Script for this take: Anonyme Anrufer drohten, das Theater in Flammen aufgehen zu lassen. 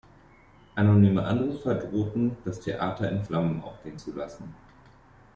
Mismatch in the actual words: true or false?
false